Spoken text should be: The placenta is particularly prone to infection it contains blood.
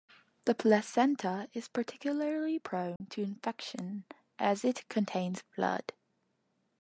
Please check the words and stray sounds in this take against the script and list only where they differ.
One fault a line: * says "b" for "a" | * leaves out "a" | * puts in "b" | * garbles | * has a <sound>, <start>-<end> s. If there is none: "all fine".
* has a dropout, 3.0-3.0 s
* puts in "as"